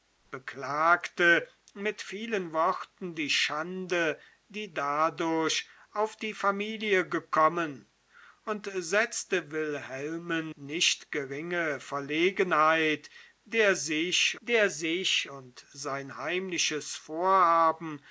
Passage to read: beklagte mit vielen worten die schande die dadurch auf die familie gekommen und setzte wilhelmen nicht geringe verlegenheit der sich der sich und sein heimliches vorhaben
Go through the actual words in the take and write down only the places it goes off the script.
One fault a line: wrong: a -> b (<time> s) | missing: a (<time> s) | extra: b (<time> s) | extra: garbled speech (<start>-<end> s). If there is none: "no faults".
no faults